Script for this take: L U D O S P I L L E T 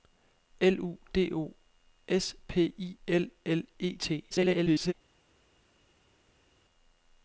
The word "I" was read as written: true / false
true